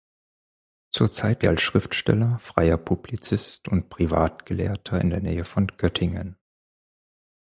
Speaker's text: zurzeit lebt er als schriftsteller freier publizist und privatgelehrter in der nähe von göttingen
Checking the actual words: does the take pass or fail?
fail